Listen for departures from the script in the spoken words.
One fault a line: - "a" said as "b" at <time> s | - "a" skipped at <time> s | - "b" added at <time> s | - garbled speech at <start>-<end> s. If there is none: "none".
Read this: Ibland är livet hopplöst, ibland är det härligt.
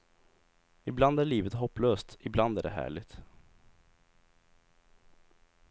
none